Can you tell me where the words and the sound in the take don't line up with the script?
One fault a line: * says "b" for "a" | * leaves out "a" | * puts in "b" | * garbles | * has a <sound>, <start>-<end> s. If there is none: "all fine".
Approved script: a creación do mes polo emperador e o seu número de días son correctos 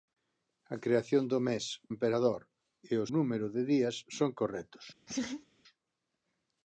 * leaves out "polo"
* leaves out "seu"
* has a laugh, 5.1-5.5 s